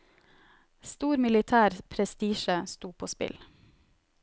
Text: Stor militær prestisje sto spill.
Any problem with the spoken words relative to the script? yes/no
yes